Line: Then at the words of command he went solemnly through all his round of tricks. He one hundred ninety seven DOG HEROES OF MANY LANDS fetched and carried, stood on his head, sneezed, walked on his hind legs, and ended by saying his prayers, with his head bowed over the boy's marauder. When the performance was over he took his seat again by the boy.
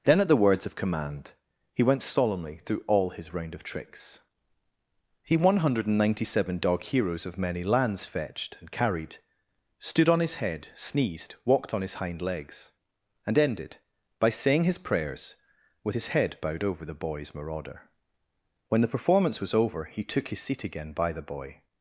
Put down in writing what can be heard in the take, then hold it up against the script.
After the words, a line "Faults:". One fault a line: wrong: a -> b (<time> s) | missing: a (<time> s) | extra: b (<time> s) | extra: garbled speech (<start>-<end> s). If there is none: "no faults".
Then at the words of command he went solemnly through all his round of tricks. He one hundred ninety seven DOG HEROES OF MANY LANDS fetched and carried, stood on his head, sneezed, walked on his hind legs, and ended by saying his prayers, with his head bowed over the boy's marauder. When the performance was over he took his seat again by the boy.
Faults:
no faults